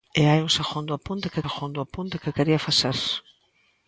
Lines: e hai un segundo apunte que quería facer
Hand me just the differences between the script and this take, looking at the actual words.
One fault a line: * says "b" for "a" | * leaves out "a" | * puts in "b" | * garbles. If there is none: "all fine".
* puts in "segundo apunte que"